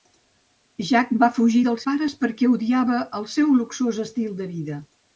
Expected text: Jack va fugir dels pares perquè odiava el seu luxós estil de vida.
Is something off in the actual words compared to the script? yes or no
no